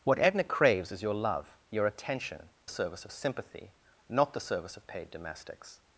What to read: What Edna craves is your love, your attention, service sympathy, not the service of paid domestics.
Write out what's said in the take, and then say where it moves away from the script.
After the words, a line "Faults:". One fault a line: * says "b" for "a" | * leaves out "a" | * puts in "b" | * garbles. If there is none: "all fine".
What Edna craves is your love, your attention, service sympathy, not the service of paid domestics.
Faults:
all fine